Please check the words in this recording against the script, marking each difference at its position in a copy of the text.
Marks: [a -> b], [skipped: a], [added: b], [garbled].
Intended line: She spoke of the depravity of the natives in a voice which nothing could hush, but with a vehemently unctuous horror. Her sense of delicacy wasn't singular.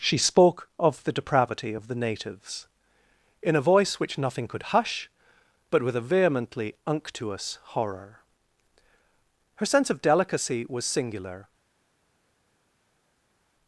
She spoke of the depravity of the natives in a voice which nothing could hush, but with a vehemently unctuous horror. Her sense of delicacy [wasn't -> was] singular.